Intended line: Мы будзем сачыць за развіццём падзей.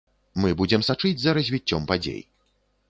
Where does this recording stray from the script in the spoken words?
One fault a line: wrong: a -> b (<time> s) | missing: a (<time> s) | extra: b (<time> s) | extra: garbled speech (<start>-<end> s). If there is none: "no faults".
no faults